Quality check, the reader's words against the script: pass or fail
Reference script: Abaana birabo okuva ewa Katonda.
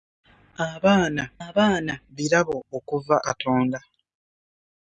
fail